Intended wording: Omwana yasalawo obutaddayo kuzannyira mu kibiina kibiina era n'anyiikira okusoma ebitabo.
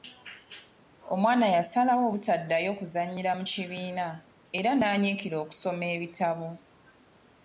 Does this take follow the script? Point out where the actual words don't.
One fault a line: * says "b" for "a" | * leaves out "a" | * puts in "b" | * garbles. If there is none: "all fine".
* leaves out "kibiina"